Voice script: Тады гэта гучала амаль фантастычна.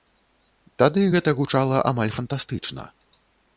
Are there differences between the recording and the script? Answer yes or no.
no